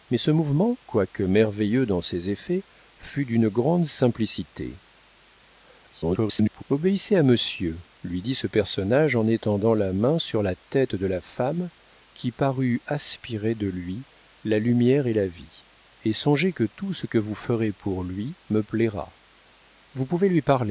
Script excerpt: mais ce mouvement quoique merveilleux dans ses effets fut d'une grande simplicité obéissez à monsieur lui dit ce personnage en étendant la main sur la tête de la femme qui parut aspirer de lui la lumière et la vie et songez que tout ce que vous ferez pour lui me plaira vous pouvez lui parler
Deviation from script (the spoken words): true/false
true